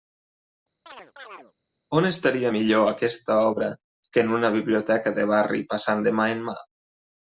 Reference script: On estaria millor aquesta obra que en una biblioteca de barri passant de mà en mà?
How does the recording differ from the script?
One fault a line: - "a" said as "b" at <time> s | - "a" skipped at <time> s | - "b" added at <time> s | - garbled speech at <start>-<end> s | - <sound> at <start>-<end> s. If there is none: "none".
- chirp at 0.9-1.5 s